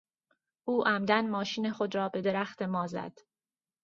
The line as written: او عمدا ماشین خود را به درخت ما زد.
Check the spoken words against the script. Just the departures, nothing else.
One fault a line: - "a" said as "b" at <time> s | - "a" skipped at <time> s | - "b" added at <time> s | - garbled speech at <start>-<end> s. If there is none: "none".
none